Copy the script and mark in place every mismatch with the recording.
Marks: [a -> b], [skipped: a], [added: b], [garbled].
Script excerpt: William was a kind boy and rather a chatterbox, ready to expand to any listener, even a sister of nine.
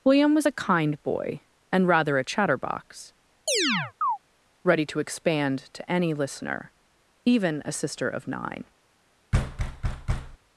William was a kind boy and rather a chatterbox, ready to expand to any listener, even a sister of nine.